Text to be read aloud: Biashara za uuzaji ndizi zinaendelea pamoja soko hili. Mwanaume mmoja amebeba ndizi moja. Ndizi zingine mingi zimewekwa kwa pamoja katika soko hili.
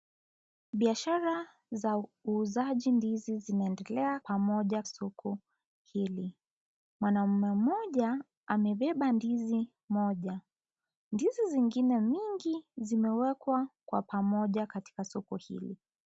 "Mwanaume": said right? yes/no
yes